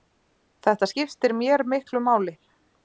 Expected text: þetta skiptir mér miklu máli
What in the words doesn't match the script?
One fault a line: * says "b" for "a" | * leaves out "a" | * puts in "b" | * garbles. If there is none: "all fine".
all fine